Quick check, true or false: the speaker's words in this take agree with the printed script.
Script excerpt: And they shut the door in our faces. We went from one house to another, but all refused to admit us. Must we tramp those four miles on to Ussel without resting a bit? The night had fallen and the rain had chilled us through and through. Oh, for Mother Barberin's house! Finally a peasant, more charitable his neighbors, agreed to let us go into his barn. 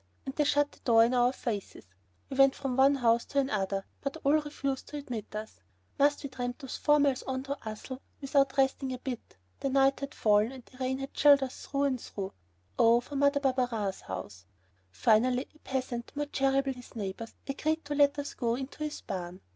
true